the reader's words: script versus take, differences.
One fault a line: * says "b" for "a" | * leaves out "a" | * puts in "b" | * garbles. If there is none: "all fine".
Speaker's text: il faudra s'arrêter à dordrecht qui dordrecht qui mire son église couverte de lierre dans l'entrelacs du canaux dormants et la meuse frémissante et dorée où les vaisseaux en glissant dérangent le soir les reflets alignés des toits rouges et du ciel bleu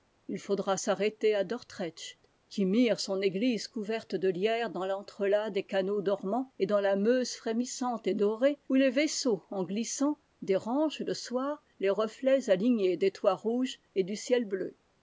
* leaves out "dordrecht qui"
* says "des" for "du"
* puts in "dans"